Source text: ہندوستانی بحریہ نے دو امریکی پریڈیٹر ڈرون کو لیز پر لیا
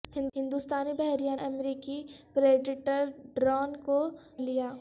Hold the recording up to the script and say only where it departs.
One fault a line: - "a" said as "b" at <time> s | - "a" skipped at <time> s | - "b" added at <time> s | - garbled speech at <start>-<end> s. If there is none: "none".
- "نے دو" skipped at 1.4 s
- "لیز پر" skipped at 4.0 s